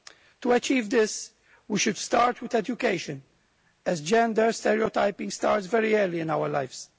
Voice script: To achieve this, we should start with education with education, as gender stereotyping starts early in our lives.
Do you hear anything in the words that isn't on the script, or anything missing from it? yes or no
yes